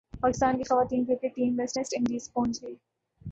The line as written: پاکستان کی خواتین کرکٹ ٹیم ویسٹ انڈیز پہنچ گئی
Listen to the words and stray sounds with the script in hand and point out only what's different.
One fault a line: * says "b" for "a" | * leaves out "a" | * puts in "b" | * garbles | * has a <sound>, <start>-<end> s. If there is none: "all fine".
* puts in "ویسٹ"